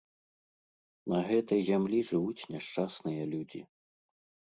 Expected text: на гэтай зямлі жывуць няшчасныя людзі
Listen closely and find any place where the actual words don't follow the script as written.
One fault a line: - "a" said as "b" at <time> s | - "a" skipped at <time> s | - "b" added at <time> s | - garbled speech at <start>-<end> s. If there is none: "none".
none